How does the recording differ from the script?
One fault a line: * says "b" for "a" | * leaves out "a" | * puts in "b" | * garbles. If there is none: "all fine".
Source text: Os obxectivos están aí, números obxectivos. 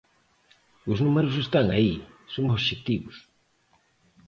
* says "números" for "obxectivos"
* says "son" for "números"